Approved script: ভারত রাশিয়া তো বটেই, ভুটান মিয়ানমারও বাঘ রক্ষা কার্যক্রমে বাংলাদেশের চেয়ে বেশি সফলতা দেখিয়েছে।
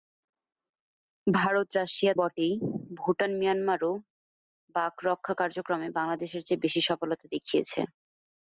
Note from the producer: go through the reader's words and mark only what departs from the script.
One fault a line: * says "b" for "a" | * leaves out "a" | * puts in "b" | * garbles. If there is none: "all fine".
* leaves out "তো"